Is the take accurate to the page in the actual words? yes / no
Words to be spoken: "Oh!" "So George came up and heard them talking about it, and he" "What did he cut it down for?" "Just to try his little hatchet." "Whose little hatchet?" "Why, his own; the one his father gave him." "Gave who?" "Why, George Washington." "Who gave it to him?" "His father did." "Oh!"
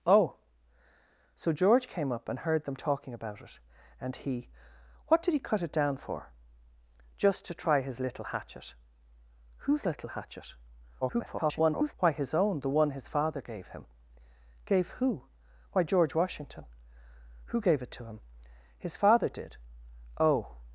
no